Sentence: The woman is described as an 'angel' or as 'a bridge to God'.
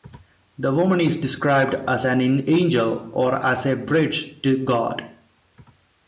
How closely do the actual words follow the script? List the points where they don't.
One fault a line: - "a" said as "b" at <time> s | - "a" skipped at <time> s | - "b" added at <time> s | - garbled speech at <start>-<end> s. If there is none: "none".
none